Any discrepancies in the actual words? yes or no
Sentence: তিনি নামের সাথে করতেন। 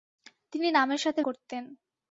no